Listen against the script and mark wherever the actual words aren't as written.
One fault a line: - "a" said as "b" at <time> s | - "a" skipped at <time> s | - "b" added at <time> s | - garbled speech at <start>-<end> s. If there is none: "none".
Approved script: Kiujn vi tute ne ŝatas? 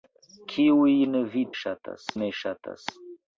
- "tute" said as "ŝatas" at 1.6 s